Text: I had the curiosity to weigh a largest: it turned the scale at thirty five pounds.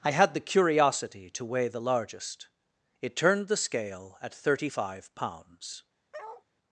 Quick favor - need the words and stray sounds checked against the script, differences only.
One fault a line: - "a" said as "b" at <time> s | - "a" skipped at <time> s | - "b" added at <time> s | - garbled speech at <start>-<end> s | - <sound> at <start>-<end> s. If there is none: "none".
- "a" said as "the" at 1.7 s
- bark at 6.1-6.4 s